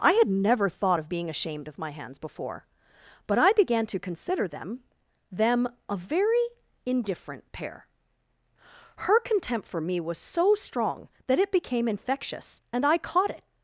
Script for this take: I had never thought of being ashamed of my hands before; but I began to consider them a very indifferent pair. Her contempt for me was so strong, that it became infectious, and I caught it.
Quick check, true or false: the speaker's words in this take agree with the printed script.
false